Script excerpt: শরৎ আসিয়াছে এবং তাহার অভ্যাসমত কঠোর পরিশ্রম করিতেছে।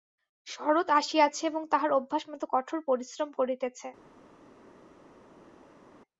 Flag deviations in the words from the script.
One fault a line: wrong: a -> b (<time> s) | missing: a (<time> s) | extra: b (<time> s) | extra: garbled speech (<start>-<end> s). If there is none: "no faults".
no faults